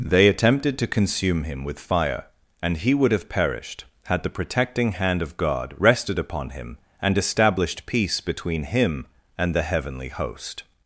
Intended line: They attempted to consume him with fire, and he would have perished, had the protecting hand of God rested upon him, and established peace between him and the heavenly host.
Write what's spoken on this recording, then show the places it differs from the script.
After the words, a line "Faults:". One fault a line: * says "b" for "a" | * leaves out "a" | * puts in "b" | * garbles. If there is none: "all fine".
They attempted to consume him with fire, and he would have perished, had the protecting hand of God rested upon him, and established peace between him and the heavenly host.
Faults:
all fine